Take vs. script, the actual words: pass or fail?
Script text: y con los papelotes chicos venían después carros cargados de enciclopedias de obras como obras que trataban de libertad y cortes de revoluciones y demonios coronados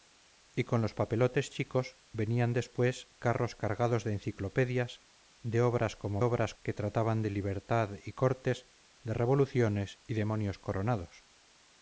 pass